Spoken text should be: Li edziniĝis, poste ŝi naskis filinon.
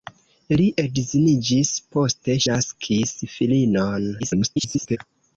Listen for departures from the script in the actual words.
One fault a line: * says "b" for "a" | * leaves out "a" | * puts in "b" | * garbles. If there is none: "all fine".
* leaves out "ŝi"
* garbles